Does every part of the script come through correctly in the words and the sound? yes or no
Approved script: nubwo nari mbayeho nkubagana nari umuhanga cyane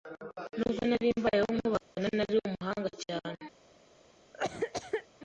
no